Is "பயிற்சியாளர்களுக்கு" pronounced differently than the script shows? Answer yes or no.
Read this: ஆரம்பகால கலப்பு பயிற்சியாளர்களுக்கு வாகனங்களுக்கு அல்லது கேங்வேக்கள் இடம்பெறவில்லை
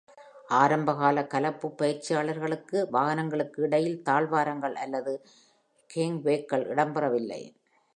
no